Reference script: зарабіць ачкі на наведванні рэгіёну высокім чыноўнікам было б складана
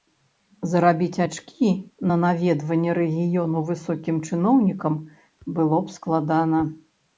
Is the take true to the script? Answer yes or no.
yes